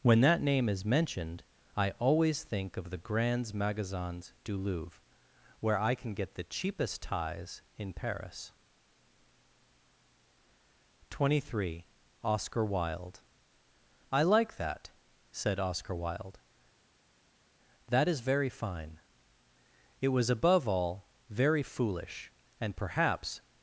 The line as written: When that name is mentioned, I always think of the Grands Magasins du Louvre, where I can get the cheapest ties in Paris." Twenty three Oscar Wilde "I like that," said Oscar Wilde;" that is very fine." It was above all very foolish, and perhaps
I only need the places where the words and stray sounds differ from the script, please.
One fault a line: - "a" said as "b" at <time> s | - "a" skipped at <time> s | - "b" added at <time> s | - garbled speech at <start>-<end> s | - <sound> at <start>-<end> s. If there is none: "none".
none